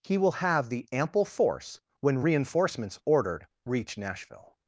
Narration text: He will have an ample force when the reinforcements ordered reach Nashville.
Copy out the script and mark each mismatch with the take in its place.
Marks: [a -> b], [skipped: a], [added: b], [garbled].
He will have [an -> the] ample force when [skipped: the] reinforcements ordered reach Nashville.